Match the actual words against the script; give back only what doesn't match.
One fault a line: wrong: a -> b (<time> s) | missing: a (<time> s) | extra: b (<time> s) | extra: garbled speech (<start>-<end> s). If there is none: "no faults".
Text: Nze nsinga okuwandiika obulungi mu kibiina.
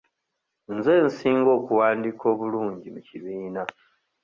no faults